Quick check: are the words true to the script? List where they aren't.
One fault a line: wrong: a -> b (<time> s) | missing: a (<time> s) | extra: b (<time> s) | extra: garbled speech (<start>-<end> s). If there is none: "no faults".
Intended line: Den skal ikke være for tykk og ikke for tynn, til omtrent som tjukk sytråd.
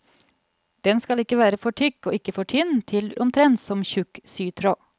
no faults